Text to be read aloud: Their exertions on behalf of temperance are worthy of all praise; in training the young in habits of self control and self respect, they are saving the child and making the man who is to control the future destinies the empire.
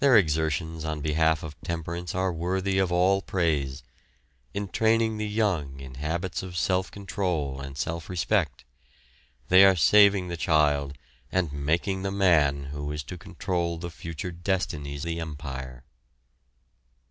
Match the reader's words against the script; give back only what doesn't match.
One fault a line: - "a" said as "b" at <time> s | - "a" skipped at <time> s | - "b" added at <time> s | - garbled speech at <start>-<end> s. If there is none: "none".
none